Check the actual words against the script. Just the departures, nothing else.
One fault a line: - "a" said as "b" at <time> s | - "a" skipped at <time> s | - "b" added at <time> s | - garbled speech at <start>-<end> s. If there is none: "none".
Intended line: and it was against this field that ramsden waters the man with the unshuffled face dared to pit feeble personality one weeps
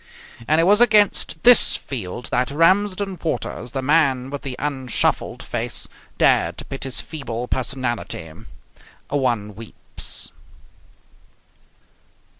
- "his" added at 6.8 s